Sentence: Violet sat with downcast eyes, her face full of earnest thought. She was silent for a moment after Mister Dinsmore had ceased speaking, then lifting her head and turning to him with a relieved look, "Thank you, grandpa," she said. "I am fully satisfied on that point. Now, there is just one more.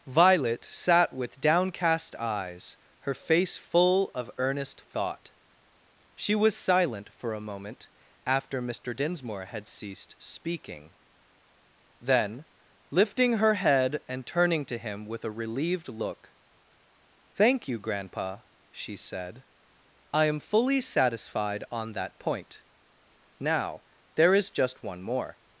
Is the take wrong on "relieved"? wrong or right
right